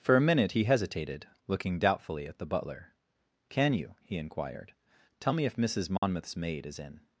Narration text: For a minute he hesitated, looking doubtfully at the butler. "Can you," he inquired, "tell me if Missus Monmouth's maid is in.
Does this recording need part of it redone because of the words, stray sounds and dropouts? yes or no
yes